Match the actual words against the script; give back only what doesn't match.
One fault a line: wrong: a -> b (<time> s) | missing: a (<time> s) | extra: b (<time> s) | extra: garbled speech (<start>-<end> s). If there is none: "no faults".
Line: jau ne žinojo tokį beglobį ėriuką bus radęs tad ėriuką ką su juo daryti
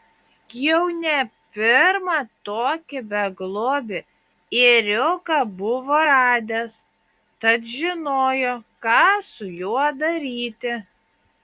wrong: žinojo -> pirmą (1.6 s)
wrong: bus -> buvo (5.6 s)
wrong: ėriuką -> žinojo (7.7 s)